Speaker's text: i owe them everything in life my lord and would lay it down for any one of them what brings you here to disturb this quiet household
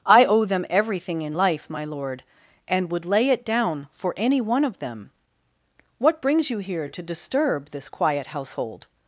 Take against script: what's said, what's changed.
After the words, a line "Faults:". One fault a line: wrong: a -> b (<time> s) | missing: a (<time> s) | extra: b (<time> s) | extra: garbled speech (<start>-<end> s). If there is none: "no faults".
i owe them everything in life my lord and would lay it down for any one of them what brings you here to disturb this quiet household
Faults:
no faults